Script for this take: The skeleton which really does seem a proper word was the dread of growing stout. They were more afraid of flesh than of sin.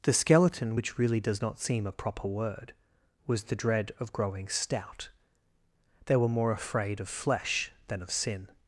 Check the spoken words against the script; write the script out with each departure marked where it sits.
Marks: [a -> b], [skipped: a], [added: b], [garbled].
The skeleton which really does [added: not] seem a proper word was the dread of growing stout. They were more afraid of flesh than of sin.